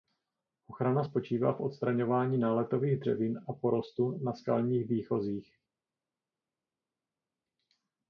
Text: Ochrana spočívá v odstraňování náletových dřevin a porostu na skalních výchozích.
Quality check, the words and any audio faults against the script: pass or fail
pass